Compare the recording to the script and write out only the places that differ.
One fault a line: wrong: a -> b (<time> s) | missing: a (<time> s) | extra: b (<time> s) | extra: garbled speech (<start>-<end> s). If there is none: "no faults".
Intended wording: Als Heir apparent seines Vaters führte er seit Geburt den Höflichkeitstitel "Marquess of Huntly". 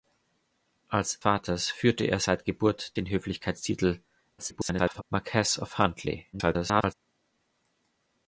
missing: Heir apparent seines (1.2 s)
extra: garbled speech (4.4-5.0 s)
extra: garbled speech (6.3-6.9 s)